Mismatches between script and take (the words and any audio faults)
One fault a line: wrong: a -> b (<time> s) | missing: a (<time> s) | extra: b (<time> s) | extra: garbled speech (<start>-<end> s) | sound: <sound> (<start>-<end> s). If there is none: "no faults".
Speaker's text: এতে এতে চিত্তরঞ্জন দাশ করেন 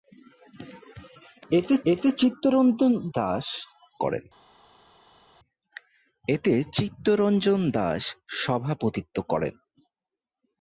no faults